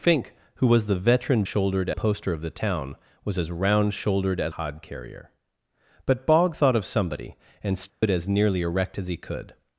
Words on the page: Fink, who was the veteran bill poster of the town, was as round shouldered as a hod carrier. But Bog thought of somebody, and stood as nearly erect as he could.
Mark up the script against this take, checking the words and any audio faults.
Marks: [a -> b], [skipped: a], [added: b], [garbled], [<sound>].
Fink, who was the veteran [bill -> shouldered] poster of the town, was as round shouldered as [skipped: a] hod carrier. But Bog thought of somebody, and stood [dropout] as nearly erect as he could.